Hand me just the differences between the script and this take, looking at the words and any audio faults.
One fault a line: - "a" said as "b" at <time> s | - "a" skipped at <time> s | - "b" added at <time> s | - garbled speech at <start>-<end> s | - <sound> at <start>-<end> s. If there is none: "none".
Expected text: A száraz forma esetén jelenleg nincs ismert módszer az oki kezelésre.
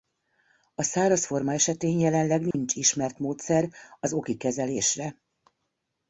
- dropout at 2.5-2.5 s